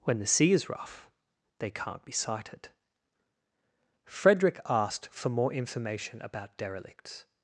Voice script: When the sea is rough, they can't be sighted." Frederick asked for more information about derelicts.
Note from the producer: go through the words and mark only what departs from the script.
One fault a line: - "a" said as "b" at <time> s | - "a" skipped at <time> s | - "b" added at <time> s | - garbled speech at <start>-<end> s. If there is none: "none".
none